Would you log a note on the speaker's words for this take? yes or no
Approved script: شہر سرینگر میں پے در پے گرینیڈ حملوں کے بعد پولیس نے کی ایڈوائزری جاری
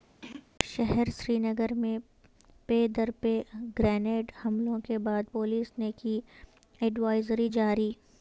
no